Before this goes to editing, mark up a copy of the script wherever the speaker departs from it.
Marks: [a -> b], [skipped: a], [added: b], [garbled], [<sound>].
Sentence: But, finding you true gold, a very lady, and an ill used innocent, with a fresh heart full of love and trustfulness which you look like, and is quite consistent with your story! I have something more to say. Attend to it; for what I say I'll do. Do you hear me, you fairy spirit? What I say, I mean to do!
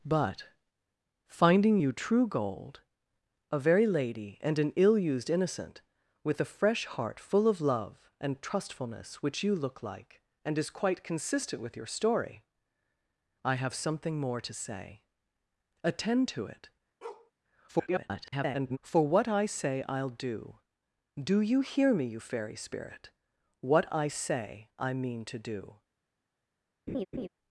But, finding you true gold, a very lady, and an ill used innocent, with a fresh heart full of love and trustfulness which you look like, and is quite consistent with your story! I have something more to say. Attend to it; [bark] [garbled] for what I say I'll do. Do you hear me, you fairy spirit? What I say, I mean to do! [laugh]